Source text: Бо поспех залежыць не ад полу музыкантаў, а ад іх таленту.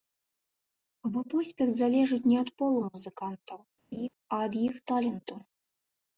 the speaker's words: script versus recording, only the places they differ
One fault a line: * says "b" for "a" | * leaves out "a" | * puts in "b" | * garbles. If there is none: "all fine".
all fine